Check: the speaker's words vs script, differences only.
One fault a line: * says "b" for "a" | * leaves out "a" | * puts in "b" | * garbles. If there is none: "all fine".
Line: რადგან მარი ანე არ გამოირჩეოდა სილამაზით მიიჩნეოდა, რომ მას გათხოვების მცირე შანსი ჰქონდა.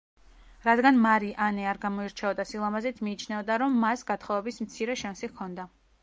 all fine